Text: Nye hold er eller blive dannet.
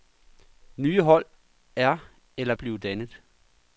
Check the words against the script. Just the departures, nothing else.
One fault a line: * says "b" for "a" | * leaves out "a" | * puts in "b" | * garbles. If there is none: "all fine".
all fine